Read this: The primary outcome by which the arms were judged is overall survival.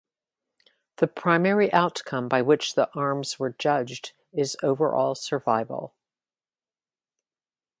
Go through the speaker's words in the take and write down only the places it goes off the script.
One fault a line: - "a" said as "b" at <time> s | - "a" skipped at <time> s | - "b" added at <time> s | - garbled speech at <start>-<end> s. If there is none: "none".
none